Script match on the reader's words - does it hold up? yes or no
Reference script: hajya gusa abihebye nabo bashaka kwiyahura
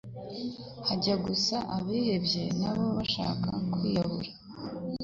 yes